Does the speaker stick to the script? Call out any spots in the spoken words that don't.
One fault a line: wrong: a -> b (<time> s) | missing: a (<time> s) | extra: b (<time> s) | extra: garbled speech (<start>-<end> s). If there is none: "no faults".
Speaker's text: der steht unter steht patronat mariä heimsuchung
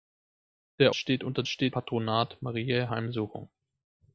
no faults